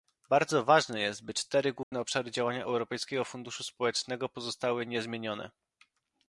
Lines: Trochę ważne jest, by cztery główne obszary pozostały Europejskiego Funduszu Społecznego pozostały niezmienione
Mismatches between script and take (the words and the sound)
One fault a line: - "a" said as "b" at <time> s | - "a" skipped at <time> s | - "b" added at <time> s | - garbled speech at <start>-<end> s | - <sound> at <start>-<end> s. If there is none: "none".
- "Trochę" said as "Bardzo" at 0.3 s
- dropout at 1.8-1.9 s
- "pozostały" said as "działania" at 2.3 s